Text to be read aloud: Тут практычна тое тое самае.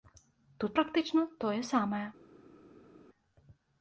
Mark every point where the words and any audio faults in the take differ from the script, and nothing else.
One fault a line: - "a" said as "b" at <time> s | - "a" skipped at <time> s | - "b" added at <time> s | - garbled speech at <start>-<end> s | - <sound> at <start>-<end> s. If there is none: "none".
- "тое" skipped at 1.6 s